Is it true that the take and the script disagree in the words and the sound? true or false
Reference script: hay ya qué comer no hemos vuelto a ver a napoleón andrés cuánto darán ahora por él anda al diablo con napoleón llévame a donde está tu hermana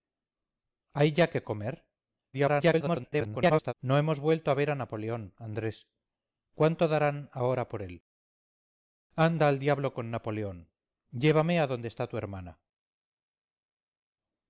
true